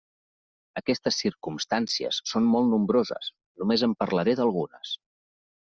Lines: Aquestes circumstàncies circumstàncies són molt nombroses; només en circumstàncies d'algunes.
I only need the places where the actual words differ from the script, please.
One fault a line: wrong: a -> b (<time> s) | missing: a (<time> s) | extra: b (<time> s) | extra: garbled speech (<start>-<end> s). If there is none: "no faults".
missing: circumstàncies (2.2 s)
wrong: circumstàncies -> parlaré (4.1 s)